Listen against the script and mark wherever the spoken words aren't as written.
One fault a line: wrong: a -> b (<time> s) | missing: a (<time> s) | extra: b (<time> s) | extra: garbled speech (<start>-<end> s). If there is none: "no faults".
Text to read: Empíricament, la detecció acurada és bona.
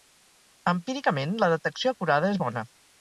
no faults